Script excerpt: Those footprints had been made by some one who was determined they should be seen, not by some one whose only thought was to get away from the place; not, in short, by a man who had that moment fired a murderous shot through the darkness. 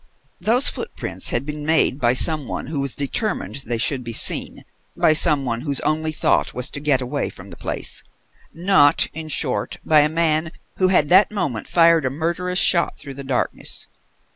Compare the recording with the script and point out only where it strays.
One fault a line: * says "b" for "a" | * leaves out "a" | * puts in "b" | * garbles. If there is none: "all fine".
* leaves out "not"